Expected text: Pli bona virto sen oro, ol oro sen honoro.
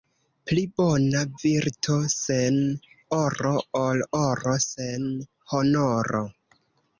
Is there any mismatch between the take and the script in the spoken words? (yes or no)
no